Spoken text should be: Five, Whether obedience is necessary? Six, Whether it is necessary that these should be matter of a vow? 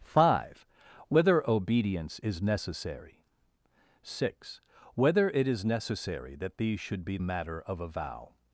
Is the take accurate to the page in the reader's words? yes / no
yes